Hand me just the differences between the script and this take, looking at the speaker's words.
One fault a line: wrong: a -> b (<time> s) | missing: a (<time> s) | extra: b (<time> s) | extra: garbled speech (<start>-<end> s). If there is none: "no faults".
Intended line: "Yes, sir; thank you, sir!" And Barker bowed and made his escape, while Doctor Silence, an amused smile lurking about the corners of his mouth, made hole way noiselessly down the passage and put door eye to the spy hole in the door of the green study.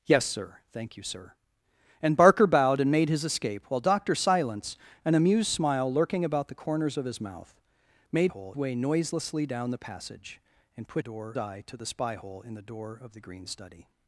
no faults